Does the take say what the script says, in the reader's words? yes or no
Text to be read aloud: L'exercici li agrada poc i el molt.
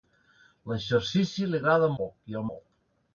yes